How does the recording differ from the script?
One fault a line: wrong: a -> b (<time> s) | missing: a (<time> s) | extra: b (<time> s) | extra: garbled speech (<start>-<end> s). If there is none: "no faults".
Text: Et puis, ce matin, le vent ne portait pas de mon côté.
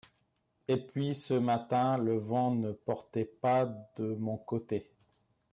no faults